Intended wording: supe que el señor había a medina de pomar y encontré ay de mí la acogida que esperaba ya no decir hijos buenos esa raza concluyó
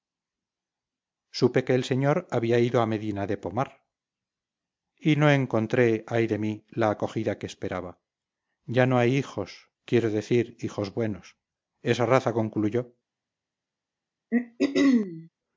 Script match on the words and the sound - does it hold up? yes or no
no